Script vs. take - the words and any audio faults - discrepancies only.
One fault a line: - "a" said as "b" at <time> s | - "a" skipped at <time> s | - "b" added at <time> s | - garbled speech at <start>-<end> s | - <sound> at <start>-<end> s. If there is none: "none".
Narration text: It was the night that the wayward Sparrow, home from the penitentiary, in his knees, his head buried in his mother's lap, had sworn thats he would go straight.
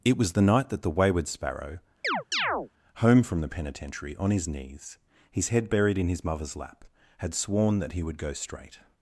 - chirp at 2.0-2.7 s
- "in" said as "on" at 4.1 s
- "thats" said as "that" at 7.8 s